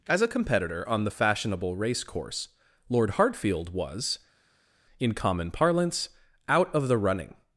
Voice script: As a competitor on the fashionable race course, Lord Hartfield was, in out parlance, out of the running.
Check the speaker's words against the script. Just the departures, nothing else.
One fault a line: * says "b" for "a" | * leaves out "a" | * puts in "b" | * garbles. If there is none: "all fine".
* says "common" for "out"